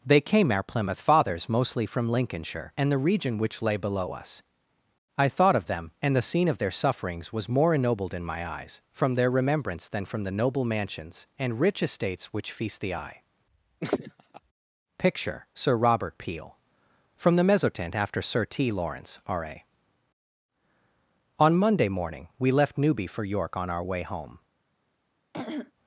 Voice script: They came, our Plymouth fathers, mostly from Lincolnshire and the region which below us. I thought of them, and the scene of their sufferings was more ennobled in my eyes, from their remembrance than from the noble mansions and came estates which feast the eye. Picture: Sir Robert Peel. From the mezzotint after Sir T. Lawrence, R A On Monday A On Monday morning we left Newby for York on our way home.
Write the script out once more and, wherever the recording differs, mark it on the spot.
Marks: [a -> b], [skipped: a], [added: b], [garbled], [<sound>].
They came, our Plymouth fathers, mostly from Lincolnshire and the region which [added: lay] below us. I thought of them, and the scene of their sufferings was more ennobled in my eyes, from their remembrance than from the noble mansions and [came -> rich] estates which feast the eye. [laugh] Picture: Sir Robert Peel. From the mezzotint after Sir T. Lawrence, R A On Monday [skipped: A On Monday] morning we left Newby for York on our way home. [throat clearing]